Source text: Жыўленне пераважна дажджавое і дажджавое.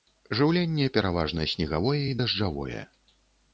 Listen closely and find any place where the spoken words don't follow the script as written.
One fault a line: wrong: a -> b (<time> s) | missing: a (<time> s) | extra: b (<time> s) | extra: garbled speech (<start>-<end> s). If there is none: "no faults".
wrong: дажджавое -> снегавое (1.5 s)